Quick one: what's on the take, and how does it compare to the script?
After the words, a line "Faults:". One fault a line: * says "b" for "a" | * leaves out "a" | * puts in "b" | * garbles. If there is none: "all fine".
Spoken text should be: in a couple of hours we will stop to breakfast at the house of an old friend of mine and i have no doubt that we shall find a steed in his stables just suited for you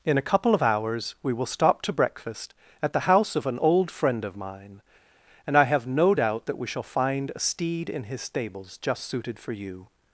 in a couple of hours we will stop to breakfast at the house of an old friend of mine and i have no doubt that we shall find a steed in his stables just suited for you
Faults:
all fine